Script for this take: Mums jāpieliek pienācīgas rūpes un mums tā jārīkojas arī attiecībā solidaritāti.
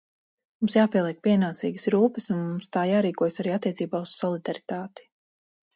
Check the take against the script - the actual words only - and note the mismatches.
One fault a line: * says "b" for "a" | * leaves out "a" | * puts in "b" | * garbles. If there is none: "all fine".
* puts in "uz"